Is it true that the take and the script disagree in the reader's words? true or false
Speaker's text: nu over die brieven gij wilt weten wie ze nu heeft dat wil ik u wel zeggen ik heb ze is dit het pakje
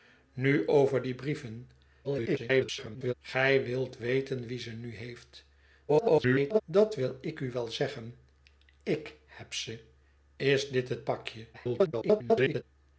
true